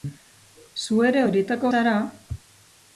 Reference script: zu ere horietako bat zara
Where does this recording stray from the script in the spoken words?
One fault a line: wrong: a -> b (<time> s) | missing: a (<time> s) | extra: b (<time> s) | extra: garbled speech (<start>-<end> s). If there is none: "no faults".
missing: bat (1.7 s)